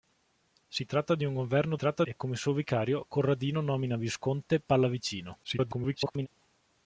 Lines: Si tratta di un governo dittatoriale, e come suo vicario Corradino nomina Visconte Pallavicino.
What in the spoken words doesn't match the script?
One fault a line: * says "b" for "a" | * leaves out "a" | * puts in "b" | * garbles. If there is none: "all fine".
* says "tratta" for "dittatoriale"
* garbles